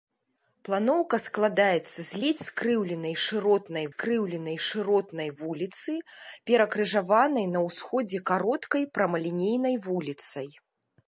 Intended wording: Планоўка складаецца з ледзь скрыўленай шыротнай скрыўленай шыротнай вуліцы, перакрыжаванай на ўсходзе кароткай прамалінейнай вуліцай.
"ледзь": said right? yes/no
yes